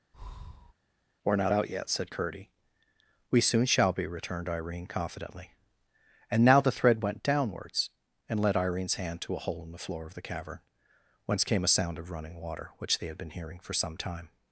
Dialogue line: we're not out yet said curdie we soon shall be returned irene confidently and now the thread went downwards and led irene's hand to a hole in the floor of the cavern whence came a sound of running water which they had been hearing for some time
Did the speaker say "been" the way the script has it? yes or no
yes